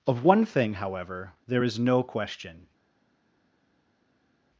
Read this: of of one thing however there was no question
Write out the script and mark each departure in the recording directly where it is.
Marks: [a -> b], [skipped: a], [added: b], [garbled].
of [skipped: of] one thing however there [was -> is] no question